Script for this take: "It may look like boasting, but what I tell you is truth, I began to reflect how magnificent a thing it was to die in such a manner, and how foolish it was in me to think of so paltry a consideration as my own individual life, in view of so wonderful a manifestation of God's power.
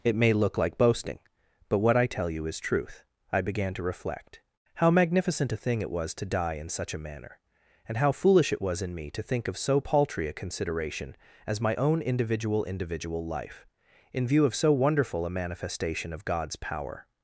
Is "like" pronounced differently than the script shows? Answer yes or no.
no